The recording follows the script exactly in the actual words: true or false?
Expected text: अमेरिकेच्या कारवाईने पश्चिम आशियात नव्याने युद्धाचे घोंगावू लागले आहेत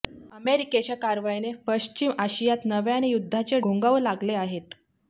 true